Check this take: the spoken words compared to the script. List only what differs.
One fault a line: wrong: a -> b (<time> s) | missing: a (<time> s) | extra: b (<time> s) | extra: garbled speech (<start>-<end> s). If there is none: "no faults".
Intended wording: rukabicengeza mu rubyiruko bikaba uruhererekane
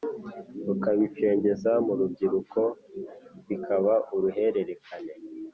no faults